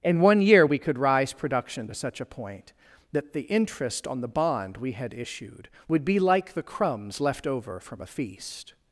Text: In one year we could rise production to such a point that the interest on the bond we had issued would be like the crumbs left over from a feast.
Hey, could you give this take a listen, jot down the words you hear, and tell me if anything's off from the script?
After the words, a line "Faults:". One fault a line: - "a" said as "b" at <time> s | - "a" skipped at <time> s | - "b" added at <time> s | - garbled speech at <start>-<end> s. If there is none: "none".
In one year we could rise production to such a point that the interest on the bond we had issued would be like the crumbs left over from a feast.
Faults:
none